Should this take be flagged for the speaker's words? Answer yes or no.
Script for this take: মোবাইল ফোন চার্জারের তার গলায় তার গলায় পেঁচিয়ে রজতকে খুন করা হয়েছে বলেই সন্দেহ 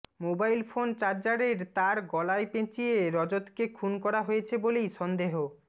yes